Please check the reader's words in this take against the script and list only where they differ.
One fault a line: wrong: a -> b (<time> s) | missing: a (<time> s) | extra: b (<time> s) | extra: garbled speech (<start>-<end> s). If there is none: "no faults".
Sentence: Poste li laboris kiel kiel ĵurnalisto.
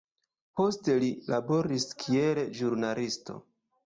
missing: kiel (2.4 s)